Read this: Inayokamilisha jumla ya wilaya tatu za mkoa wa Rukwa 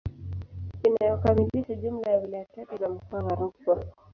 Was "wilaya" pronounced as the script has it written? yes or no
yes